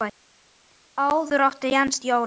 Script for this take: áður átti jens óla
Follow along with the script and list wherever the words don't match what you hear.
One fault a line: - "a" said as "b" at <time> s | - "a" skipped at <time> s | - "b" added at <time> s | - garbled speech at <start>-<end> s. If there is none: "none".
none